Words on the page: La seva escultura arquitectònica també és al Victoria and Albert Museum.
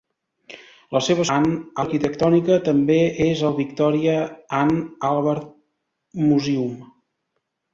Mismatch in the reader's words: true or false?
true